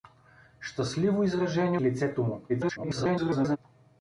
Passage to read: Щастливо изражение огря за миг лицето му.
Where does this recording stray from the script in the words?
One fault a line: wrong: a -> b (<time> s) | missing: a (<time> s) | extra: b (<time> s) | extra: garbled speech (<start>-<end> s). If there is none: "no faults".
missing: огря за миг (1.8 s)
extra: garbled speech (2.5-3.6 s)